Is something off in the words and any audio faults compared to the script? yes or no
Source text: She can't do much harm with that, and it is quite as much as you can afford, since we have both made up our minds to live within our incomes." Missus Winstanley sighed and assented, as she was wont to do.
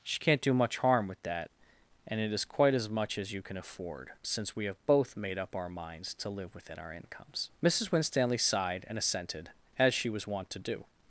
no